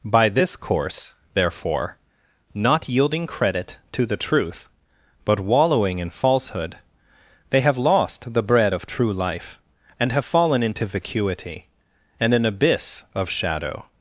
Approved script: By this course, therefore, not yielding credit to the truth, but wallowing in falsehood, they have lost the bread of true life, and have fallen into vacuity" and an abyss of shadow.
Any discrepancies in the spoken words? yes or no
no